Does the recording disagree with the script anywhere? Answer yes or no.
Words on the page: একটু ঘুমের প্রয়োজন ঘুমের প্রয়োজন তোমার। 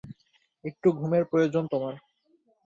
yes